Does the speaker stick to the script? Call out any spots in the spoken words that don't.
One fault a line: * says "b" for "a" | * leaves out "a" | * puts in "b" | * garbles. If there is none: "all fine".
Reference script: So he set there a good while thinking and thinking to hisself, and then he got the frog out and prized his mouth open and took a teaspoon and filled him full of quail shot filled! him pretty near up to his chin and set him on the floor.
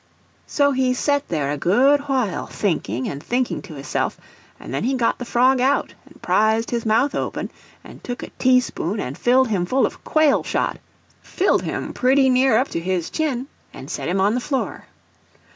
all fine